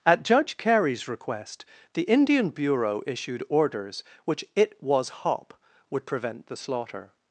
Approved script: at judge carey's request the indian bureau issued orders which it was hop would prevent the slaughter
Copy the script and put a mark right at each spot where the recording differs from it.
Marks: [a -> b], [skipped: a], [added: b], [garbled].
at judge carey's request the indian bureau issued orders which it was hop would prevent the slaughter